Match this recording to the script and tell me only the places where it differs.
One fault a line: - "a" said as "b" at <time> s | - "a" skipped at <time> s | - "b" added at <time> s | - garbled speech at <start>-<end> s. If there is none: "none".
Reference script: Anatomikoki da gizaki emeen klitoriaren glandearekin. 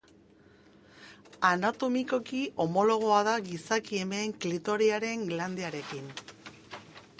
- "homologoa" added at 2.6 s